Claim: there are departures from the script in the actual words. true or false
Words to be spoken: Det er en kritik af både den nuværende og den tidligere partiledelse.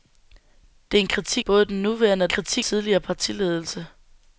true